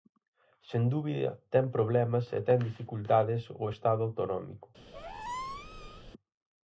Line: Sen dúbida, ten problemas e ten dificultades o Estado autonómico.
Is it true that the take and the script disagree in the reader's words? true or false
false